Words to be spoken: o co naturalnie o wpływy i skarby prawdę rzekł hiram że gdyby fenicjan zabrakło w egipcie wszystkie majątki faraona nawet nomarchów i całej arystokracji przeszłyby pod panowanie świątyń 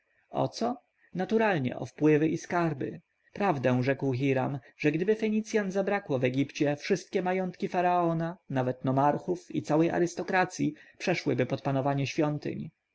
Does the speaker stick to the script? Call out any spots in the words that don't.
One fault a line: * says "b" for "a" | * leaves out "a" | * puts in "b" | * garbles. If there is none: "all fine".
all fine